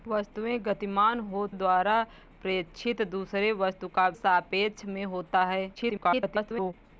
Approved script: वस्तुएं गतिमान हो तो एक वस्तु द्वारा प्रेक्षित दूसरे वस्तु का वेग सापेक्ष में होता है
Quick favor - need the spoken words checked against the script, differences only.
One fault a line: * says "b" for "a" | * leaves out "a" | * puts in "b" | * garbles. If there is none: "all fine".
* leaves out "तो एक वस्तु"
* leaves out "वेग"
* garbles